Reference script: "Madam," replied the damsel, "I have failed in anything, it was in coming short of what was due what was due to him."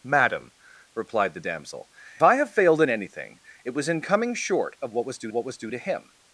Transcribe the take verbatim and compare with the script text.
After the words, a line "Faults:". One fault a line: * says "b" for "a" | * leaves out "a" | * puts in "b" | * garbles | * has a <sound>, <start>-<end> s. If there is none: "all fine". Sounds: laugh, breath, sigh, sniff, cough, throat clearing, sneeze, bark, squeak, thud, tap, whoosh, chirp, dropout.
"Madam," replied the damsel, "I have failed in anything, it was in coming short of what was due what was due to him."
Faults:
all fine